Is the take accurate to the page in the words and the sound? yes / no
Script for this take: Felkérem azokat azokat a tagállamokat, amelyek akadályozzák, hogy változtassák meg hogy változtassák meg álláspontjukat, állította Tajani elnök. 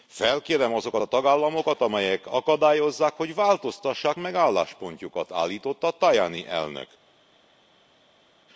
no